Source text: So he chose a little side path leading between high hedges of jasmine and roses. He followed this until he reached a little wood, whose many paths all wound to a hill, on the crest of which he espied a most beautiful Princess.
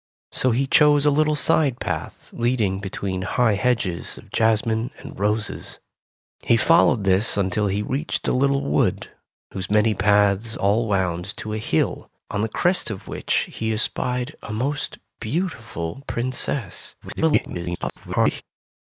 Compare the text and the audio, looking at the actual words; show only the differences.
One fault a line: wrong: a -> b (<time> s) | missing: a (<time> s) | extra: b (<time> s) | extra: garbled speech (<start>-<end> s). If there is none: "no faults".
extra: garbled speech (17.0-18.4 s)